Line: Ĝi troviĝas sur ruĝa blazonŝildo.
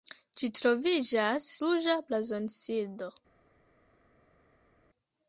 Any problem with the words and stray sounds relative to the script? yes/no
yes